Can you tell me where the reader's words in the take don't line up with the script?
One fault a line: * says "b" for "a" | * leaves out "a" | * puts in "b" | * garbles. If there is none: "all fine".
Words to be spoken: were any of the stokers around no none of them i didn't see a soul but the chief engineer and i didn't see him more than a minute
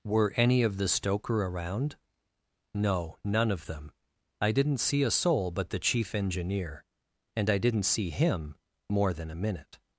* says "stoker" for "stokers"